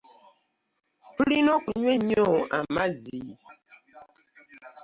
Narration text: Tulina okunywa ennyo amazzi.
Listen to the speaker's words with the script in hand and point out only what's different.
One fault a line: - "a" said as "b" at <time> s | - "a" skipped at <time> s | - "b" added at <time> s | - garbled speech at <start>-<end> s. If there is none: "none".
none